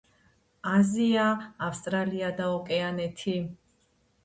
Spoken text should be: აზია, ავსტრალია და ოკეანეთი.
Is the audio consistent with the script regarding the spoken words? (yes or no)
yes